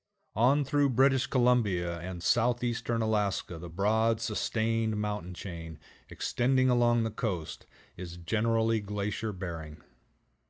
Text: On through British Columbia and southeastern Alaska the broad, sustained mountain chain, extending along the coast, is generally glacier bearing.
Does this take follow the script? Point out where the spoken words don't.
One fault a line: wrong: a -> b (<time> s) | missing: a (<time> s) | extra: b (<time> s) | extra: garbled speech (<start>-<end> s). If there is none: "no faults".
no faults